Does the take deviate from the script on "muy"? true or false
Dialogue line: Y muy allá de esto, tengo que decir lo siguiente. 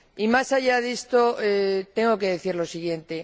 true